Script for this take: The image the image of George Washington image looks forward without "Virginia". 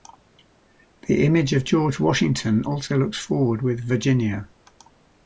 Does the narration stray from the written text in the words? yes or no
yes